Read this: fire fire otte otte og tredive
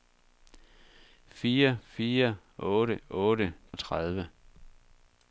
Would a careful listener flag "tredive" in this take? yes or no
no